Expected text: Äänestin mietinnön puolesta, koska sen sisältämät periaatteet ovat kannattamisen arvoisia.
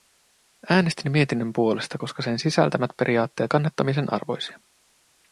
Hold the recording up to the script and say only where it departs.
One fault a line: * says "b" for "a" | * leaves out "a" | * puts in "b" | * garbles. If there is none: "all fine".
* leaves out "ovat"